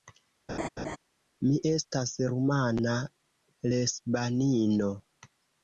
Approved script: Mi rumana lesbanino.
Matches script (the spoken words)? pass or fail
fail